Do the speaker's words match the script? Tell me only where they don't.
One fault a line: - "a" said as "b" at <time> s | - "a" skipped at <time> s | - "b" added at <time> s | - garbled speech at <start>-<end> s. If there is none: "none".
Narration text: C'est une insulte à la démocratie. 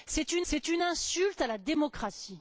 - "c'est une" added at 0.4 s